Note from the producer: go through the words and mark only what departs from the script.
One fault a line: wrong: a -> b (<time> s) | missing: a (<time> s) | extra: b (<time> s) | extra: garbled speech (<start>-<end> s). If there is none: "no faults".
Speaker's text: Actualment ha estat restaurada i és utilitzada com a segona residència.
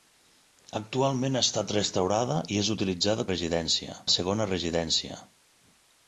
wrong: com -> residència (3.3 s)